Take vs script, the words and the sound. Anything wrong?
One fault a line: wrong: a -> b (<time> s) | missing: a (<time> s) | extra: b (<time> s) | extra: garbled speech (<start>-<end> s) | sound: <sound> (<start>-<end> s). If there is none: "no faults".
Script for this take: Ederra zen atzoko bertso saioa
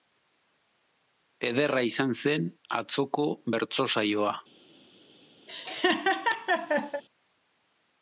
extra: izan (1.9 s)
sound: laugh (5.5-7.0 s)